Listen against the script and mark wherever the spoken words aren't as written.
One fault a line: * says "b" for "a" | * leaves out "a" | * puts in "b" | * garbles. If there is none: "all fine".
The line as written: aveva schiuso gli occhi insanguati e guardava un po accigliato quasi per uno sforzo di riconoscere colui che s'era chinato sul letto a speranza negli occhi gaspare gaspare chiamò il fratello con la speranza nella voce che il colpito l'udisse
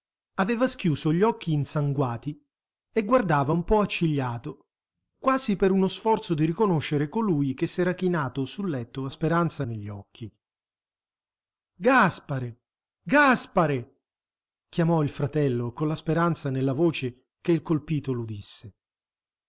all fine